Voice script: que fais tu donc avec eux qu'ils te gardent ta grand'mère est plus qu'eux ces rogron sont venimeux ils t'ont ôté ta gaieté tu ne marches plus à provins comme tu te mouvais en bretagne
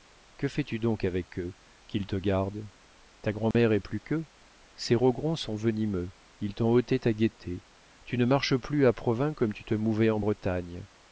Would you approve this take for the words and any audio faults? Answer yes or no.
no